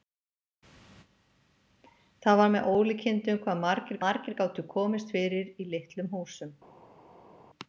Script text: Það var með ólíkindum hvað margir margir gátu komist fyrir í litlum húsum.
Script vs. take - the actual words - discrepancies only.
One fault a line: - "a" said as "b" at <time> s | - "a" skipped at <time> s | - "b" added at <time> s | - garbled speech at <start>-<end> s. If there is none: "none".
none